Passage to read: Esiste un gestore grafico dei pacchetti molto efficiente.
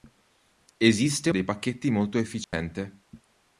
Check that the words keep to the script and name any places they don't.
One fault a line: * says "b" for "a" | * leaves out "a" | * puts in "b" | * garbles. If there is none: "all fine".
* leaves out "un gestore grafico"